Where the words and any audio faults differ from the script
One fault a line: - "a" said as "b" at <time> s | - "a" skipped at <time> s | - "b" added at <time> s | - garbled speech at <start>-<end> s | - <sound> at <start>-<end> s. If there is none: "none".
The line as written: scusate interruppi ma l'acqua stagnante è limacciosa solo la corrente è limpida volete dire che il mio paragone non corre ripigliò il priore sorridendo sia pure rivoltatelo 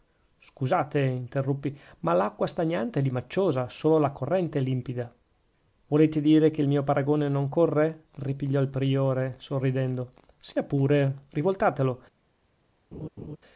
- laugh at 12.9-13.4 s